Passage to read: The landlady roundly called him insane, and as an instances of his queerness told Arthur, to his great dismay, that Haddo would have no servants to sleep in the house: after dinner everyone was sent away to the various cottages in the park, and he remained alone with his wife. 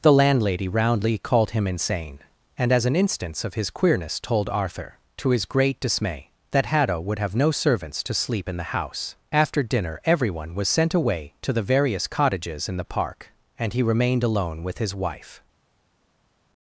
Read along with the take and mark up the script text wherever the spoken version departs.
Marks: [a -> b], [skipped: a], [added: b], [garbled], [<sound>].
The landlady roundly called him insane, and as an [instances -> instance] of his queerness told Arthur, to his great dismay, that Haddo would have no servants to sleep in the house: after dinner everyone was sent away to the various cottages in the park, and he remained alone with his wife.